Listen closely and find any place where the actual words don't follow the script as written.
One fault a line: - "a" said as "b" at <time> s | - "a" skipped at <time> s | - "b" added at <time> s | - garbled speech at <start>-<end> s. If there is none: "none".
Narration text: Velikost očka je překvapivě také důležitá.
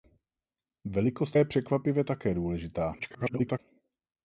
- "očka" skipped at 1.4 s
- garbled speech at 3.0-3.6 s